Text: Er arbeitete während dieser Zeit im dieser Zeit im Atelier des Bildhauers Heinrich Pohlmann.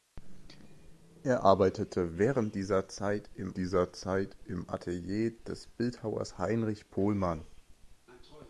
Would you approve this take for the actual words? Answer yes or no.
yes